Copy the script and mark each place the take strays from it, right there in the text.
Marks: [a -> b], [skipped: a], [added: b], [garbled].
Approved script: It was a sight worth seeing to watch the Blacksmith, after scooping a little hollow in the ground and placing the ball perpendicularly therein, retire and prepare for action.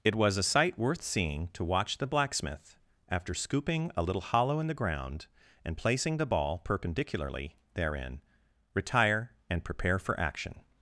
It was a sight worth seeing to watch the Blacksmith, after scooping a little hollow in the ground and placing the ball perpendicularly therein, retire and prepare for action.